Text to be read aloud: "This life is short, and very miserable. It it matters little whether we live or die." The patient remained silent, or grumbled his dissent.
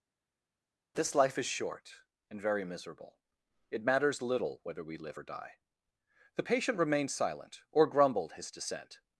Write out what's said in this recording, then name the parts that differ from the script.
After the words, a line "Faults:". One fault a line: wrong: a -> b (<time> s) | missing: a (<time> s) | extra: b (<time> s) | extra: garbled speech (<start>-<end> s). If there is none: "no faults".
"This life is short, and very miserable. It matters little whether we live or die." The patient remained silent, or grumbled his dissent.
Faults:
missing: it (3.8 s)